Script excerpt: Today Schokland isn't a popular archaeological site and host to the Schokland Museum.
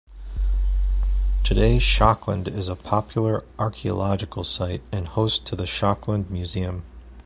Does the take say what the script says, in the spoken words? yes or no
no